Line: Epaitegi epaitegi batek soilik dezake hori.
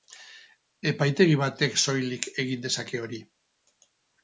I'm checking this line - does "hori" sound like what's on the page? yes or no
yes